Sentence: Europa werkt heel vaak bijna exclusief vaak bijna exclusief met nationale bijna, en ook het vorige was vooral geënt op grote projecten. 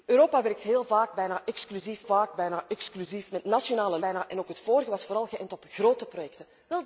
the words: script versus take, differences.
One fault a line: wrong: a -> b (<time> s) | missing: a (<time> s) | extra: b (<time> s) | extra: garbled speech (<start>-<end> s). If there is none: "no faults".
no faults